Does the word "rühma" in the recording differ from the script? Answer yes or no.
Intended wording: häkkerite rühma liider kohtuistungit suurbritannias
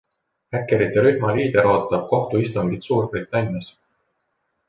no